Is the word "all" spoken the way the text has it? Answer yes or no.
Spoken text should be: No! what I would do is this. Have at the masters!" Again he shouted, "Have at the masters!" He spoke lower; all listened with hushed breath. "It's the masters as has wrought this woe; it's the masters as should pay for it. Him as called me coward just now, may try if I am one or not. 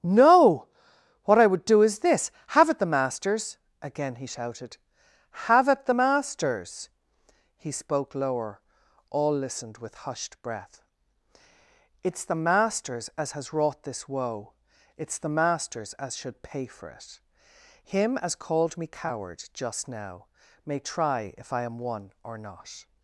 yes